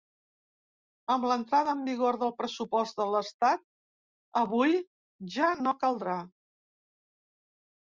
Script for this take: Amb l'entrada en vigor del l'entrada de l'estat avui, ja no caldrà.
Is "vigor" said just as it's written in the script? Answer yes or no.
yes